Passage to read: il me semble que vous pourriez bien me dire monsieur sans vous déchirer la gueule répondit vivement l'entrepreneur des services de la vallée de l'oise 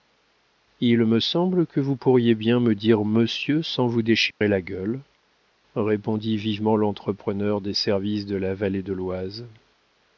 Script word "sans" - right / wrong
right